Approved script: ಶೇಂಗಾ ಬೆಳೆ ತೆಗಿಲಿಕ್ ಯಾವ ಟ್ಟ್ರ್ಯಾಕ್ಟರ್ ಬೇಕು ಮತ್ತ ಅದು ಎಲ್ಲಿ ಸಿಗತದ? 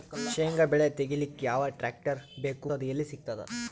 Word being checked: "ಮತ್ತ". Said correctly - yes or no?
no